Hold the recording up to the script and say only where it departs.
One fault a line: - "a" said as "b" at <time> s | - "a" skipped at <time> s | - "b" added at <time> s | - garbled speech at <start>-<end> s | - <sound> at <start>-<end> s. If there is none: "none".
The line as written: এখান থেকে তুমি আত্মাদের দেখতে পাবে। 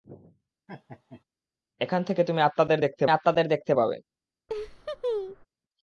- laugh at 0.7-1.2 s
- "আত্মাদের দেখতে" added at 3.1 s
- laugh at 4.5-5.5 s